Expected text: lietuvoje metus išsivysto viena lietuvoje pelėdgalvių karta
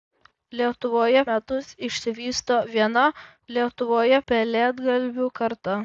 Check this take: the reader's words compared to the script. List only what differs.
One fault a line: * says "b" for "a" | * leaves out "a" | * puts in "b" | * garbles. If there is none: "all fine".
all fine